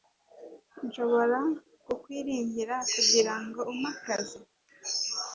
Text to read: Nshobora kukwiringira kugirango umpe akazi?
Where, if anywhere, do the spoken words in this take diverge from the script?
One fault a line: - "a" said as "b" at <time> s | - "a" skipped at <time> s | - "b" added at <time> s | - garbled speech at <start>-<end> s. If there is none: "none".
none